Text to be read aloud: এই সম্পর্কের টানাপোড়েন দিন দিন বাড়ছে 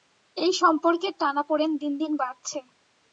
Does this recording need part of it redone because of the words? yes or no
no